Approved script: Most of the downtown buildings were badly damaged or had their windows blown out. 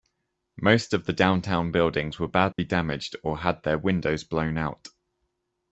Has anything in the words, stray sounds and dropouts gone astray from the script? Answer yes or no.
yes